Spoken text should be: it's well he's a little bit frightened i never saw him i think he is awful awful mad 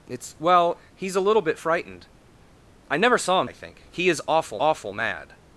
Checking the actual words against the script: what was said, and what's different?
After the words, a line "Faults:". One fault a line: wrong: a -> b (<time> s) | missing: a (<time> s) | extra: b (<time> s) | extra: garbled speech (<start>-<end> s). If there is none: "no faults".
it's well he's a little bit frightened i never saw him i think he is awful awful mad
Faults:
no faults